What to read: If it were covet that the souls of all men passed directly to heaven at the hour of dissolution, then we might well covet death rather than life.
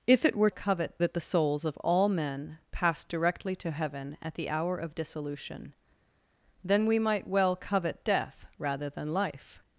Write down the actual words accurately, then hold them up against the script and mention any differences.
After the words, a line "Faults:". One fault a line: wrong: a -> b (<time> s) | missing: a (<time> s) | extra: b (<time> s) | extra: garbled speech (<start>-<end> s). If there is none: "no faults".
If it were covet that the souls of all men passed directly to heaven at the hour of dissolution, then we might well covet death rather than life.
Faults:
no faults